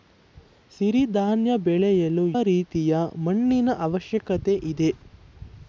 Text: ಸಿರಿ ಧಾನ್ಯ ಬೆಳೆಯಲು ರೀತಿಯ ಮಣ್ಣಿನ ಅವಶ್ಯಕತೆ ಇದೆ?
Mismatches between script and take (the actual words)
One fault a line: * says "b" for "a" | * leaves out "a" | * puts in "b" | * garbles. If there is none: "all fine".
all fine